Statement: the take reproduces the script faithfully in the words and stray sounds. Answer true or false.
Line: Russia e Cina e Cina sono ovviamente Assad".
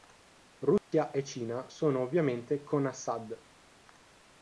false